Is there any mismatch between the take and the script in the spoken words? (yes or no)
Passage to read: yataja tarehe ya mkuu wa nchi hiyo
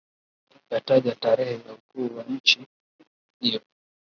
no